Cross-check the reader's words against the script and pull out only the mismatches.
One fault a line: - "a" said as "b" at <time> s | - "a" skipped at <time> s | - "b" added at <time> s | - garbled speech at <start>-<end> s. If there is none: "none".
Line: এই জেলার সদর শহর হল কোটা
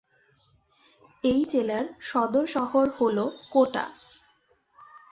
none